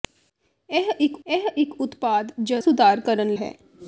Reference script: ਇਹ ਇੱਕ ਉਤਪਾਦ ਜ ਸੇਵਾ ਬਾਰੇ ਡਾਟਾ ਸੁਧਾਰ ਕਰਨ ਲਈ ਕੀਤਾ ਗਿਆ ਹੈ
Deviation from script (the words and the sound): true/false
true